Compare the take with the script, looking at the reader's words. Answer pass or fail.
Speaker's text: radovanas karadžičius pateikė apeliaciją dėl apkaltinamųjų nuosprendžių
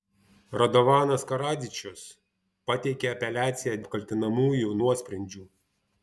fail